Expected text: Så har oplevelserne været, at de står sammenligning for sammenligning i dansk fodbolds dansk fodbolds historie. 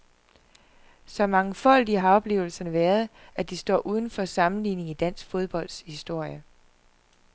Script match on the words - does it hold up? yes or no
no